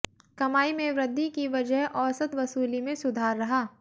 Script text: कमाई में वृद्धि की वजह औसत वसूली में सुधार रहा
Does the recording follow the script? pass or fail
pass